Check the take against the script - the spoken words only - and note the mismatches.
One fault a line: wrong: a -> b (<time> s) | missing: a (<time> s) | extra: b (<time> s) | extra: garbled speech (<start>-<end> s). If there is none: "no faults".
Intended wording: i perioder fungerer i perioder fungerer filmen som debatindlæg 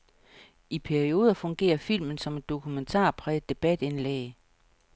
wrong: i perioder fungerer filmen som -> filmen som et dokumentarpræget (1.8 s)